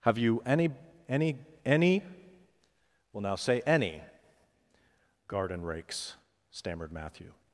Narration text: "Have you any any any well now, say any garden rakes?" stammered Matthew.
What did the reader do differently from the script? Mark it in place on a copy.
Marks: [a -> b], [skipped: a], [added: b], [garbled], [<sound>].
"Have you any any any well now, say any garden rakes?" stammered Matthew.